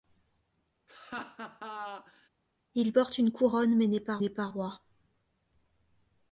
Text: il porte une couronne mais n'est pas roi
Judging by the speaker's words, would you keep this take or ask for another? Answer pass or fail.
fail